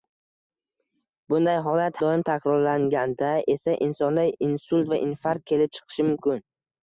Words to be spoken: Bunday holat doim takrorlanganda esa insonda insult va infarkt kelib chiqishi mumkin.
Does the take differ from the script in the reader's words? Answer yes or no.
no